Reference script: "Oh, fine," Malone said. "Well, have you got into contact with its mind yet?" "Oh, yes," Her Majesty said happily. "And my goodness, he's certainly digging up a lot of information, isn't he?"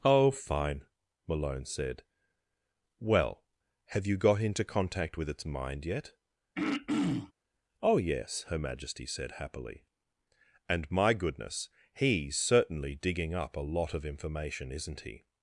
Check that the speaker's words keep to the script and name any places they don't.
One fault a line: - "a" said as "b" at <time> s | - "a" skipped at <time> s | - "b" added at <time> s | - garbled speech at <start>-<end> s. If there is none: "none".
none